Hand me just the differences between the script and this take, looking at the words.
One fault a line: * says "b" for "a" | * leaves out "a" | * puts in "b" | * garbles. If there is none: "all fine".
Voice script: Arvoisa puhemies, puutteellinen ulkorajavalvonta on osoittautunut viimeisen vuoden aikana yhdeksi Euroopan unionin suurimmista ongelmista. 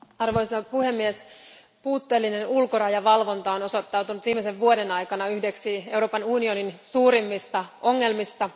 all fine